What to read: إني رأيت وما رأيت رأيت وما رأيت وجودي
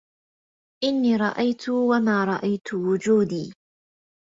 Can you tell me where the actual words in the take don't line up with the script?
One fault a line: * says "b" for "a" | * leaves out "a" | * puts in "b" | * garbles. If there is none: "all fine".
* leaves out "رأيت وما رأيت"